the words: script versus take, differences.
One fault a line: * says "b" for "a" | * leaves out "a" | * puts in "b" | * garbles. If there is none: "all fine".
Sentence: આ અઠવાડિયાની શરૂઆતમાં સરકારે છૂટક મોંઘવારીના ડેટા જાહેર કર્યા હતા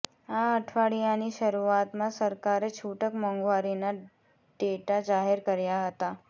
all fine